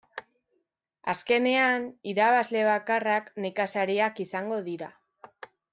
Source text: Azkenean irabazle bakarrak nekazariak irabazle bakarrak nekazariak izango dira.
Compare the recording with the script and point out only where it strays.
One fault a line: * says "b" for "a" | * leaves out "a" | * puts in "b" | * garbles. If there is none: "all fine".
* leaves out "irabazle bakarrak nekazariak"